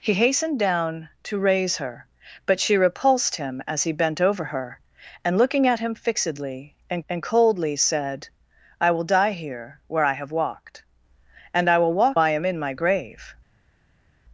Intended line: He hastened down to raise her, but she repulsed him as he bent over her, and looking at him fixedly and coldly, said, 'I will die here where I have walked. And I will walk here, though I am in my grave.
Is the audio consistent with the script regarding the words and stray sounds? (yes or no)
no